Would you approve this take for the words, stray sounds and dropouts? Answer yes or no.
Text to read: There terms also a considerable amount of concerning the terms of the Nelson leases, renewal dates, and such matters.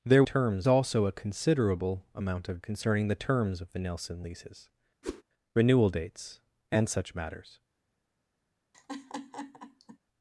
no